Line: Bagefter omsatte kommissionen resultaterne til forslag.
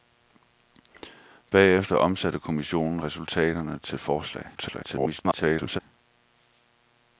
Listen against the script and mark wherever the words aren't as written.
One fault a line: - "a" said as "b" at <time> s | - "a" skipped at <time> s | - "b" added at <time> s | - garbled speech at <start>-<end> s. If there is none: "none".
- garbled speech at 4.6-5.8 s